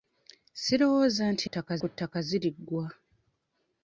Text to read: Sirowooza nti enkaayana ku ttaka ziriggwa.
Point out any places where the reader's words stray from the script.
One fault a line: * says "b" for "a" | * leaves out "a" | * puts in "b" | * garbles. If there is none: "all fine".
* says "ttaka" for "enkaayana"